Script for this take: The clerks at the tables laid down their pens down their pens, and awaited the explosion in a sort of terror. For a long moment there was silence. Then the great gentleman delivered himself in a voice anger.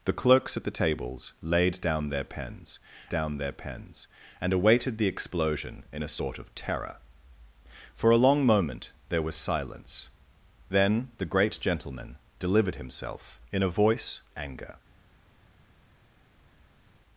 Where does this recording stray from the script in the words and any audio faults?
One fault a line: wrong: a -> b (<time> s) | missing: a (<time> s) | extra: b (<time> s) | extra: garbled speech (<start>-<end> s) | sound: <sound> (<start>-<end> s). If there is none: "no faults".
no faults